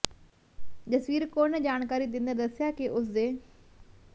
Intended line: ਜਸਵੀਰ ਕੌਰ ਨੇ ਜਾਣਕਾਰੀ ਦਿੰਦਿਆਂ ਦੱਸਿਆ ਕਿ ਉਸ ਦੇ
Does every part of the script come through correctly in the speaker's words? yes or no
yes